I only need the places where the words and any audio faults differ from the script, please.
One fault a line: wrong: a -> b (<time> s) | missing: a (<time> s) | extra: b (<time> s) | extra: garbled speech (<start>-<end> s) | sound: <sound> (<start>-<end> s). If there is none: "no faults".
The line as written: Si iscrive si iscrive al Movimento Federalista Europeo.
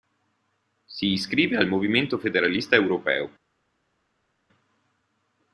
missing: si iscrive (1.6 s)